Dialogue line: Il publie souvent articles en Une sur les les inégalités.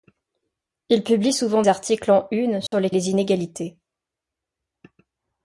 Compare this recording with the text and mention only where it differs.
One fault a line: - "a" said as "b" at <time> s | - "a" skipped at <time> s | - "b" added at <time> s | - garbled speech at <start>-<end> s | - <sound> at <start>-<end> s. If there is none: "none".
- dropout at 2.7-2.7 s